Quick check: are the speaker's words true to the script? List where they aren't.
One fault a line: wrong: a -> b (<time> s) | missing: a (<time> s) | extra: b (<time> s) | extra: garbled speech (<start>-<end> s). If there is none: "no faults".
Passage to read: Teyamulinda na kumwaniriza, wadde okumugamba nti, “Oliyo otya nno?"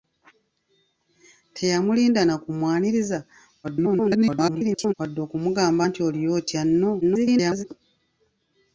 extra: garbled speech (3.6-4.9 s)
extra: garbled speech (7.0-7.6 s)